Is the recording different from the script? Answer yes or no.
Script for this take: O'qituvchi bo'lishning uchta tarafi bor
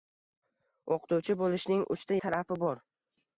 no